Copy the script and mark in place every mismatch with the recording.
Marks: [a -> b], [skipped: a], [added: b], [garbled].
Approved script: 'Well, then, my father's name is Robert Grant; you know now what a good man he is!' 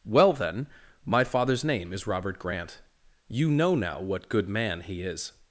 'Well, then, my father's name is Robert Grant; you know now what [skipped: a] good man he is!'